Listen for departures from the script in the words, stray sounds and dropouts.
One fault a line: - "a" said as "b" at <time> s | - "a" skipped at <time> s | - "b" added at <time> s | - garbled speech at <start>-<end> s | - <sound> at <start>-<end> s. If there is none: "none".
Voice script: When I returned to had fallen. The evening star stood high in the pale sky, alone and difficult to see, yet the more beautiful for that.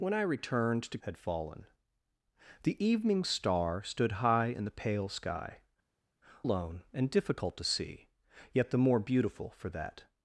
none